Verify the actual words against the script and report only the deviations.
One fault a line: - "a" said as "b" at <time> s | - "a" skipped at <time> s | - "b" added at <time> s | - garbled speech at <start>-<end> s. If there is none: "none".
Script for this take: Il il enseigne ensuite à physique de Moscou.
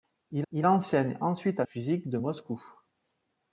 none